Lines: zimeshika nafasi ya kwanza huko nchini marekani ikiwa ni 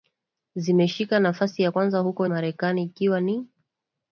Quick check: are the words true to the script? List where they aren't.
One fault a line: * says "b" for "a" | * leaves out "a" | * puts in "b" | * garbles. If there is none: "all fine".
* leaves out "nchini"